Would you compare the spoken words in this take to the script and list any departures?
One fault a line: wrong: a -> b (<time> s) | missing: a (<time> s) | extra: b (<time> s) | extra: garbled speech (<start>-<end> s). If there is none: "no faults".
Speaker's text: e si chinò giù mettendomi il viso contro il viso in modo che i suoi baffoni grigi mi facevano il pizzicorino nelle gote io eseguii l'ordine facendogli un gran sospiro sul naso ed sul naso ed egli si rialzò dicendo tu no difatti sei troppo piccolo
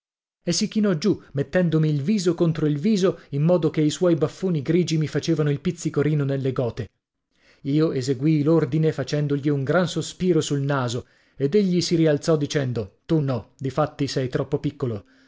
missing: sul naso ed (11.5 s)